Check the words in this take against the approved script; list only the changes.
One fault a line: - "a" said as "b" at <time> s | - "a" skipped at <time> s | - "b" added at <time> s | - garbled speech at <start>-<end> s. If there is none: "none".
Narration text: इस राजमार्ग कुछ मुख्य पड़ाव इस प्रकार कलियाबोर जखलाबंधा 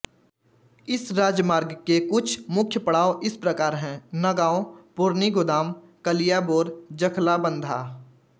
- "के" added at 1.9 s
- "हैं नगाँव पुरनीगुदाम" added at 3.7 s